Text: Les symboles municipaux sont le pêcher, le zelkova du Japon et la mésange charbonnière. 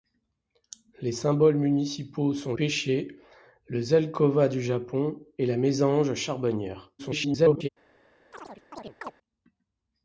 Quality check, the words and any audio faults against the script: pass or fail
fail